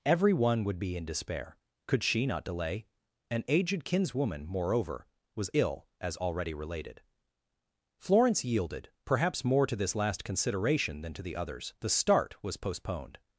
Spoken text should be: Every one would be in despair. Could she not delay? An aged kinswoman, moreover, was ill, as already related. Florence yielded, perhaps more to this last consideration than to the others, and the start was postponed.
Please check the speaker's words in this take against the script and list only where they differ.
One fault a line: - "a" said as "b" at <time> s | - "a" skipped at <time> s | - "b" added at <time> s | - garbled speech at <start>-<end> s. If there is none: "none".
- "and" skipped at 11.7 s